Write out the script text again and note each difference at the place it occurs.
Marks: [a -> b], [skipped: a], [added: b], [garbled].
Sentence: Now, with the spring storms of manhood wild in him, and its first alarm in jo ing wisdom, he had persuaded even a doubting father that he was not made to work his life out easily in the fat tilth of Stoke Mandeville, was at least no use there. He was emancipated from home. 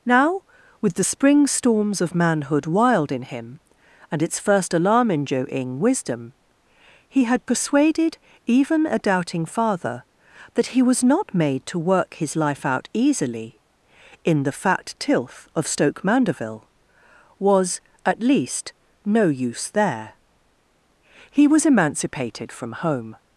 Now, with the spring storms of manhood wild in him, and its first alarm in jo ing wisdom, he had persuaded even a doubting father that he was not made to work his life out easily in the fat tilth of Stoke Mandeville, was at least no use there. He was emancipated from home.